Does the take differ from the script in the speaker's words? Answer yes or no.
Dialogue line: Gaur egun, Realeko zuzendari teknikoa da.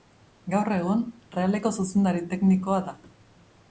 no